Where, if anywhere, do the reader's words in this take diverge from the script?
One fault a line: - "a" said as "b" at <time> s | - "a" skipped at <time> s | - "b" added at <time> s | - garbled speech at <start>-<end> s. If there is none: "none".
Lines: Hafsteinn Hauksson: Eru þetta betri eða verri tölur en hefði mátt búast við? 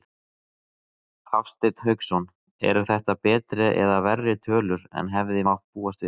none